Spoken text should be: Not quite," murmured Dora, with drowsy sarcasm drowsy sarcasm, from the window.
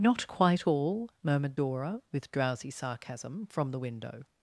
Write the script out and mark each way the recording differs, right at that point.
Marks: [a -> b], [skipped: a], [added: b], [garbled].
Not quite," [added: all] murmured Dora, with drowsy sarcasm [skipped: drowsy sarcasm,] from the window.